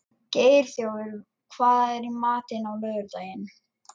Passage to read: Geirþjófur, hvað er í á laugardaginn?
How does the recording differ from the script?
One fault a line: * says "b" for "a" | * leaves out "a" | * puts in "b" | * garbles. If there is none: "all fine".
* puts in "matinn"